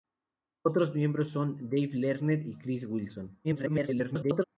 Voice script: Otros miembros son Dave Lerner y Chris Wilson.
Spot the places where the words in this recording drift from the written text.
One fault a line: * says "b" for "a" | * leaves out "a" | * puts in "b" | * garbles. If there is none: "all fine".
* garbles